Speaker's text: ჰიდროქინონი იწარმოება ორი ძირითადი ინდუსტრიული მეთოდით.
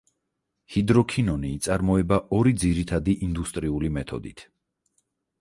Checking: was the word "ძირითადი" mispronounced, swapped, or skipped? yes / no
no